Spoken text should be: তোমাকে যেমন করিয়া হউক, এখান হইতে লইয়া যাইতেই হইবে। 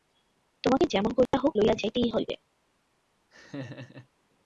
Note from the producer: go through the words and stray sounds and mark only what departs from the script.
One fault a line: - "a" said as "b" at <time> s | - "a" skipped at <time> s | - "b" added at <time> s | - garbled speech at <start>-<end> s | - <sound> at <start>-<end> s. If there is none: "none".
- dropout at 1.3-1.3 s
- "এখান হইতে" skipped at 1.5 s
- laugh at 3.3-4.1 s